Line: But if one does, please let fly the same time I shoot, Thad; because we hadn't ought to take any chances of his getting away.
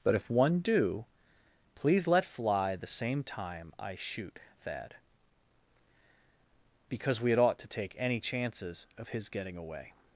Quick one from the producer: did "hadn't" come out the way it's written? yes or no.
no